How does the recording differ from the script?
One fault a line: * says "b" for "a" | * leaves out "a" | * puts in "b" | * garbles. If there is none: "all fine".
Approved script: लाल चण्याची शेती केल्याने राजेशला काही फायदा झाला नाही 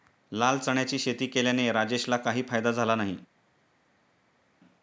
all fine